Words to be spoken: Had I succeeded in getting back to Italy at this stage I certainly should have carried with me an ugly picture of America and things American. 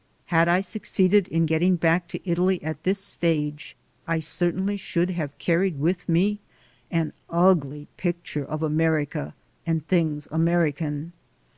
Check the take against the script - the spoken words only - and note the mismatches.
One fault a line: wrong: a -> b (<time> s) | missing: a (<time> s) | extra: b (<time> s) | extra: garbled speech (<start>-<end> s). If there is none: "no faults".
no faults